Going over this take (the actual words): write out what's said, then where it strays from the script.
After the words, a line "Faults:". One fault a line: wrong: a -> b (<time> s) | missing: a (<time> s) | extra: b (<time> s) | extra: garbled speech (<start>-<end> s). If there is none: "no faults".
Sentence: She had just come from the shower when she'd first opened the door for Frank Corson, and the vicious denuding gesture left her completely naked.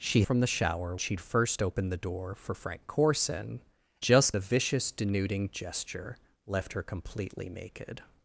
She from the shower she'd first opened the door for Frank Corson, just the vicious denuding gesture left her completely naked.
Faults:
missing: had just come (0.2 s)
missing: when (1.0 s)
wrong: and -> just (4.0 s)